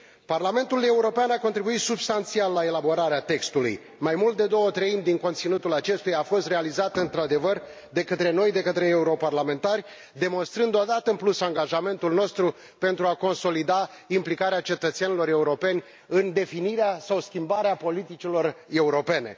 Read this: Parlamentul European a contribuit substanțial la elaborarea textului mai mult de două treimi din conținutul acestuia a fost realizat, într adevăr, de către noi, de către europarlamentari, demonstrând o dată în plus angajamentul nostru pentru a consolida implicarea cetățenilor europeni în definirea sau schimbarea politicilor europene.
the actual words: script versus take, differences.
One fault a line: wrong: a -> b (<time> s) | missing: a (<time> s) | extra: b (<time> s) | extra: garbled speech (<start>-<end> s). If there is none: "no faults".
no faults